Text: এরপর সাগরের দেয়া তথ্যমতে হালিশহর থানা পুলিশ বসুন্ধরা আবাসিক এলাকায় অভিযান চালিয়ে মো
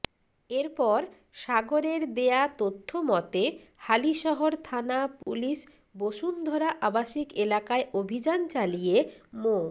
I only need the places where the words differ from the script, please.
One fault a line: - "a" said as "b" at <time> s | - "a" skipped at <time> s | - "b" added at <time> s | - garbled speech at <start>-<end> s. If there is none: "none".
none